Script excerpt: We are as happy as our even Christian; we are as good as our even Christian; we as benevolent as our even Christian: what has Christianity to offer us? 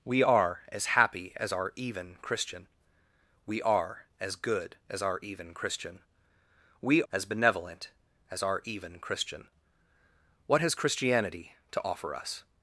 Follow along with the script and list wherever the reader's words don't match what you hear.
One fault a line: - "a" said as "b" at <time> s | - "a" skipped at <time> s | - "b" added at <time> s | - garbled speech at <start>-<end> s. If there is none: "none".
none